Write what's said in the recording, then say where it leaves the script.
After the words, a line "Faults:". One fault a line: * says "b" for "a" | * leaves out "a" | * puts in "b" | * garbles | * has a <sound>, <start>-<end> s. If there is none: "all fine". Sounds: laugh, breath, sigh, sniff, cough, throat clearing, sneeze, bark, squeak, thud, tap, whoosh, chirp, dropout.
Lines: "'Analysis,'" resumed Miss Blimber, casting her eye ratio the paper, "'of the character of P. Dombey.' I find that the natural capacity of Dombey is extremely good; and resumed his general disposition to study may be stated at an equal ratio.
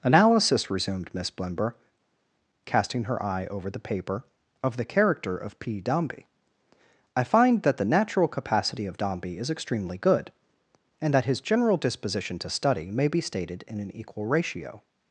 "'Analysis,'" resumed Miss Blimber, casting her eye over the paper, "'of the character of P. Dombey.' I find that the natural capacity of Dombey is extremely good; and that his general disposition to study may be stated in an equal ratio.
Faults:
* says "over" for "ratio"
* says "that" for "resumed"
* says "in" for "at"